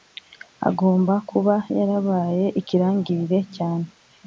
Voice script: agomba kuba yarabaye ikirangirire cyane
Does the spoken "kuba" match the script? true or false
true